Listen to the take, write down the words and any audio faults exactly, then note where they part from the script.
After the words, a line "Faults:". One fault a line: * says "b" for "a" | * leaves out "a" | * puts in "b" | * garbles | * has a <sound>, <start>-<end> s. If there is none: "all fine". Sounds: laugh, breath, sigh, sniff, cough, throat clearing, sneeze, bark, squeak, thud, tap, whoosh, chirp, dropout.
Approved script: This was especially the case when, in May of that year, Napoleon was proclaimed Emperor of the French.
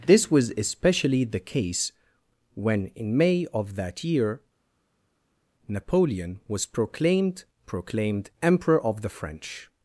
This was especially the case when, in May of that year, Napoleon was proclaimed proclaimed Emperor of the French.
Faults:
* puts in "proclaimed"